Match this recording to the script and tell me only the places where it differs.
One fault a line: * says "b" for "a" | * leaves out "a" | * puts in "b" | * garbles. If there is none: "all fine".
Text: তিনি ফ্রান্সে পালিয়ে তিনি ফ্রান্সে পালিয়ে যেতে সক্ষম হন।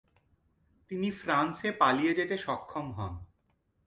* leaves out "তিনি ফ্রান্সে পালিয়ে"